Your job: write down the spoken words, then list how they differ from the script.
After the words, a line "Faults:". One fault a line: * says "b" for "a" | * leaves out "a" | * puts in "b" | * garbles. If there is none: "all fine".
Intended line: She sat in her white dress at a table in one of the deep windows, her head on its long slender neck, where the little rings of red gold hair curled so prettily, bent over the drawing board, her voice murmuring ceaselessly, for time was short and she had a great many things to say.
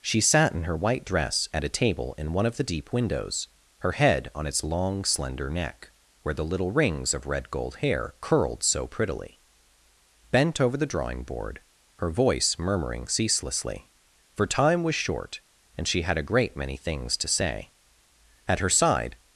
She sat in her white dress at a table in one of the deep windows, her head on its long slender neck, where the little rings of red gold hair curled so prettily, bent over the drawing board, her voice murmuring ceaselessly, for time was short and she had a great many things to say. At her side
Faults:
* puts in "At her side"